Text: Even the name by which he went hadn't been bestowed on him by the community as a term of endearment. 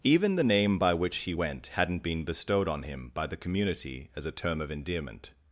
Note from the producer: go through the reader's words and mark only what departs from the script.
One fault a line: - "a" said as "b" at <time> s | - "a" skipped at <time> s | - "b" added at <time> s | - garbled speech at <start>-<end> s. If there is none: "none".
none